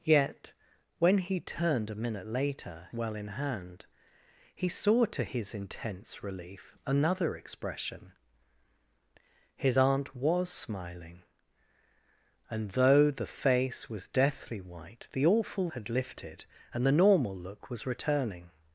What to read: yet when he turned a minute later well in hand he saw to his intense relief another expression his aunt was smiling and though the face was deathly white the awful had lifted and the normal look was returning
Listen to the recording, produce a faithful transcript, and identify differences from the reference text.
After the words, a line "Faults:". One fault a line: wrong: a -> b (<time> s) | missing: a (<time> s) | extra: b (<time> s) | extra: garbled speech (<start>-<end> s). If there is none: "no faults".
yet when he turned a minute later well in hand he saw to his intense relief another expression his aunt was smiling and though the face was deathly white the awful had lifted and the normal look was returning
Faults:
no faults